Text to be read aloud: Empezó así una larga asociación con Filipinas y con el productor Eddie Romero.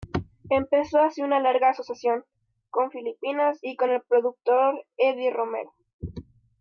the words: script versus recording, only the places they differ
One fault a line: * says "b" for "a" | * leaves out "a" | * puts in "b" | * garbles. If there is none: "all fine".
all fine